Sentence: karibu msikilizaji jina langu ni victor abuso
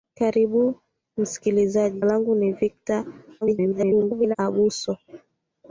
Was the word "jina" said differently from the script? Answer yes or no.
yes